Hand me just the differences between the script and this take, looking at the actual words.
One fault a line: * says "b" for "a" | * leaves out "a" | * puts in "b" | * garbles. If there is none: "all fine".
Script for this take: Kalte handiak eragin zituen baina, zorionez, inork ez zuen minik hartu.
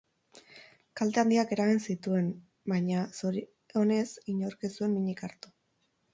all fine